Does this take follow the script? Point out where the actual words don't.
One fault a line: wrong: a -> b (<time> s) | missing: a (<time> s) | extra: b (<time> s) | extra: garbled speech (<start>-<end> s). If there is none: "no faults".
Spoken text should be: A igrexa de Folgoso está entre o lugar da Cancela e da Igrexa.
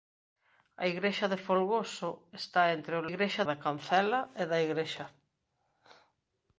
wrong: lugar -> igrexa (3.1 s)